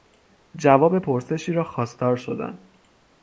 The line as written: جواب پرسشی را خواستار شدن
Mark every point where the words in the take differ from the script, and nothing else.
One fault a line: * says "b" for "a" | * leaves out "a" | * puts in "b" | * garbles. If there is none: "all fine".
all fine